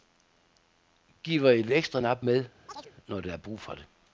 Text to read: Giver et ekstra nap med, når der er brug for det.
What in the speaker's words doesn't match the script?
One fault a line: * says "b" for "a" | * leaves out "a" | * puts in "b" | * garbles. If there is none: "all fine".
all fine